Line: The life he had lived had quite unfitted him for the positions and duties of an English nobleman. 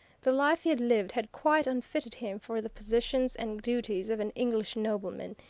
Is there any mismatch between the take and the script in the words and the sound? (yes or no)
no